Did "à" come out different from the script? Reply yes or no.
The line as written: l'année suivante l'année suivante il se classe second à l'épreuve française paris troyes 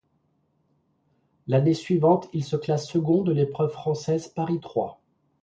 yes